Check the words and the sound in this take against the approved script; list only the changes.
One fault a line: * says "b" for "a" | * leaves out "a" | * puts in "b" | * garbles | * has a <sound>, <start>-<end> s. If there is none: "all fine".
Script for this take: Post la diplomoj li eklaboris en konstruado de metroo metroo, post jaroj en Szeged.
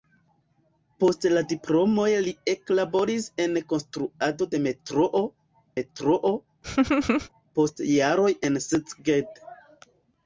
* has a laugh, 6.6-7.3 s